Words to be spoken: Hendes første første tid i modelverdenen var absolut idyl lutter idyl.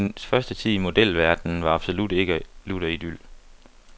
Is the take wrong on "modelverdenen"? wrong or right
right